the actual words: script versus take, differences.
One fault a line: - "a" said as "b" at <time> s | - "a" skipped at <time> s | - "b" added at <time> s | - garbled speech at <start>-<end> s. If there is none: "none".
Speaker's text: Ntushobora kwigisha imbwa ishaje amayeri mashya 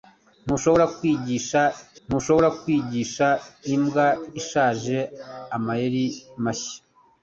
- "ntushobora kwigisha" added at 2.1 s